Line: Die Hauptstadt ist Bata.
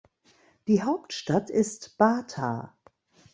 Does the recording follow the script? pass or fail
pass